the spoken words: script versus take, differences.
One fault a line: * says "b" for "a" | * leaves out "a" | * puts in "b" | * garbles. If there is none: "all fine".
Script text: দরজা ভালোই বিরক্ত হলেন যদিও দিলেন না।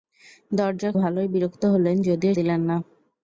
all fine